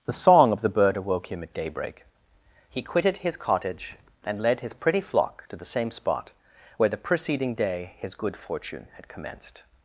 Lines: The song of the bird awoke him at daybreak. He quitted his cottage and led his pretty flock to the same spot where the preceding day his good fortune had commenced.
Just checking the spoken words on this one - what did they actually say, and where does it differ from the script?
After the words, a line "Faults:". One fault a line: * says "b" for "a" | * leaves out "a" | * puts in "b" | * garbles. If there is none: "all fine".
The song of the bird awoke him at daybreak. He quitted his cottage and led his pretty flock to the same spot where the preceding day his good fortune had commenced.
Faults:
all fine